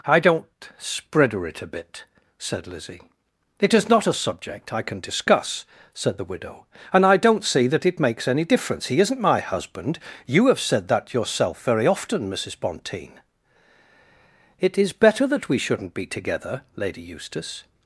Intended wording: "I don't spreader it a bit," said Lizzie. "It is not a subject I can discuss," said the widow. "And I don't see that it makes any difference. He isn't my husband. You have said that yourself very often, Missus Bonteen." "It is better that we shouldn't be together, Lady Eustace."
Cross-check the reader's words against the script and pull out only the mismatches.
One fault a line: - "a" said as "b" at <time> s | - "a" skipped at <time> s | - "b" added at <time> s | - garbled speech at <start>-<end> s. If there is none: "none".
none